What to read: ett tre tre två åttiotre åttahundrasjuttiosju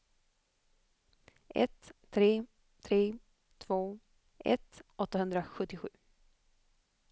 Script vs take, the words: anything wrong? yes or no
yes